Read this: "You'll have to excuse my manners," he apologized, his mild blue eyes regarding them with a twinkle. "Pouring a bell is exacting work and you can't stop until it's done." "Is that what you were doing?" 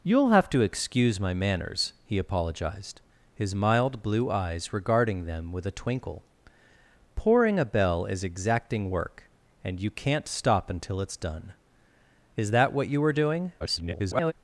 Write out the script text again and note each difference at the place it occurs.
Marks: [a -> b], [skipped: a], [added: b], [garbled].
"You'll have to excuse my manners," he apologized, his mild blue eyes regarding them with a twinkle. "Pouring a bell is exacting work and you can't stop until it's done." "Is that what you were doing?" [garbled]